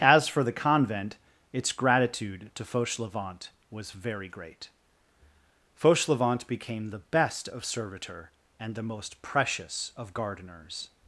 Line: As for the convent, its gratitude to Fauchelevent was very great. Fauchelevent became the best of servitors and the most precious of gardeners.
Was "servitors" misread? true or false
true